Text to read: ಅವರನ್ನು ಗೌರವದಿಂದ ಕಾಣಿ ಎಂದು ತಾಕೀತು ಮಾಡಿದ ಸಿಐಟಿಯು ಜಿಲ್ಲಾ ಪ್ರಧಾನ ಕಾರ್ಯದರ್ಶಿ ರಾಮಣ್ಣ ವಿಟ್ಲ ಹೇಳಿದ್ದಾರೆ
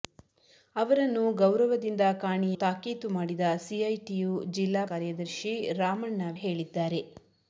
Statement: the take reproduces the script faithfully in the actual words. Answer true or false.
false